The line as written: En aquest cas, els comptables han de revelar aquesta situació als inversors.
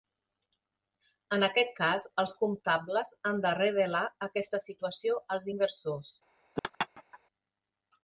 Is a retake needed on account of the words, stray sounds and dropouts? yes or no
yes